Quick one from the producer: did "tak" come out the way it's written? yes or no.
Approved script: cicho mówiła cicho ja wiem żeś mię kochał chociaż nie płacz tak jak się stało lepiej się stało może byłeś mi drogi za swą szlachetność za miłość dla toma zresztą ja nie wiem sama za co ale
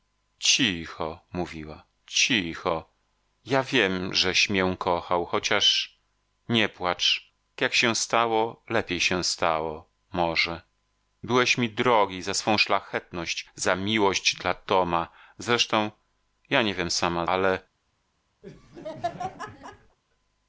no